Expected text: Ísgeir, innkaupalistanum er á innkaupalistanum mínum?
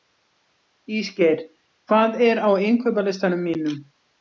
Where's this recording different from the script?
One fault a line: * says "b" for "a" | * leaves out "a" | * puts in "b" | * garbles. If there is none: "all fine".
* says "hvað" for "innkaupalistanum"